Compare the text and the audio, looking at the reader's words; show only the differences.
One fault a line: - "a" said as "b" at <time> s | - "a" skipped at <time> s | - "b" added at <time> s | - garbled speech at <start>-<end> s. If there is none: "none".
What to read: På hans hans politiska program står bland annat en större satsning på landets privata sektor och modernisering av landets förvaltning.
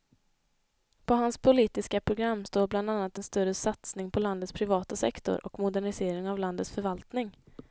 - "hans" skipped at 1.4 s